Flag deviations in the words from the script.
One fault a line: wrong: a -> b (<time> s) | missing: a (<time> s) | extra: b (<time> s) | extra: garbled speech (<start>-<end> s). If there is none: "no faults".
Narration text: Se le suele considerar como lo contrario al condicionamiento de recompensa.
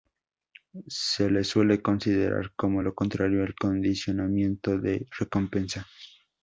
no faults